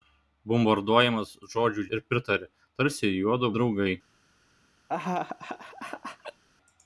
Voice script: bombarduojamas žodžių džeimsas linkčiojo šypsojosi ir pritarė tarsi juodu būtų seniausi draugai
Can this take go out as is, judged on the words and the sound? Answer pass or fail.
fail